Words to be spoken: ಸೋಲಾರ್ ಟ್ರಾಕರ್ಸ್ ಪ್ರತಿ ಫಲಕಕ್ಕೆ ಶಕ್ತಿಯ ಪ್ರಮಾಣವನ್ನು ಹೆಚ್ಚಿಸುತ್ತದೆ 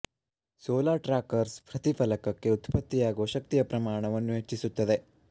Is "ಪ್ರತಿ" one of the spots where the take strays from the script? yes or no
no